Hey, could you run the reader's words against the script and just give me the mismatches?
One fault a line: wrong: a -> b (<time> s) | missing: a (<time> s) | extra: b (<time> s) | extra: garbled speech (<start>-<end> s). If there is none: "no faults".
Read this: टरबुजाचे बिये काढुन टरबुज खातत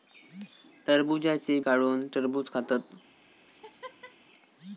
missing: बिये (1.6 s)